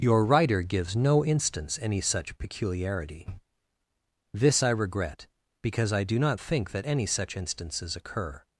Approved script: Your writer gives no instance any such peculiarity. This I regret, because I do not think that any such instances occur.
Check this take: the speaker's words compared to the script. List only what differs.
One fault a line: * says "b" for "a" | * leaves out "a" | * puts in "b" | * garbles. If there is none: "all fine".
all fine